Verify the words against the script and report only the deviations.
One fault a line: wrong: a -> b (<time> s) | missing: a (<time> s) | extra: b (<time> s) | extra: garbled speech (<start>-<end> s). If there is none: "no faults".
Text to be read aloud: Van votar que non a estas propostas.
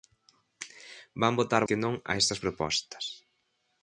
no faults